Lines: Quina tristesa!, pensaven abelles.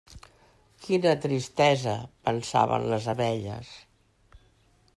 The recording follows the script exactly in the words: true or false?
false